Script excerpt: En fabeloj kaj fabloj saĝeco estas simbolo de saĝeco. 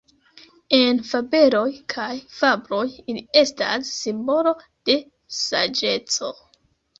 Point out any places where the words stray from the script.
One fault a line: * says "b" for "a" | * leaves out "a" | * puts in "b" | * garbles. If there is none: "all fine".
* says "ili" for "saĝeco"